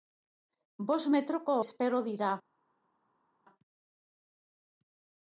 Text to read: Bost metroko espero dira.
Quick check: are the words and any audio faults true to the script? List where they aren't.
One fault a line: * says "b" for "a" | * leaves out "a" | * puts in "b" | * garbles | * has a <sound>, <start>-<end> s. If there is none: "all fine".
all fine